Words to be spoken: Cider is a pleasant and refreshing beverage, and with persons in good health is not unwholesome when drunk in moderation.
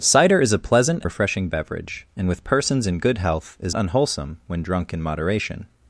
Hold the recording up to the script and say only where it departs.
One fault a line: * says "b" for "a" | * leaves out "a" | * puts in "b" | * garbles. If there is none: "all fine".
* leaves out "and"
* leaves out "not"